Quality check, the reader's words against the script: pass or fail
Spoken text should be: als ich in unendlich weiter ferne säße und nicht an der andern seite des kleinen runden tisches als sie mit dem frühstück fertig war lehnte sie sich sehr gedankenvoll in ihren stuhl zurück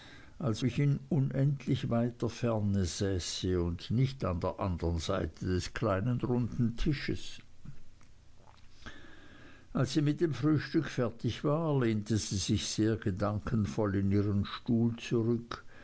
pass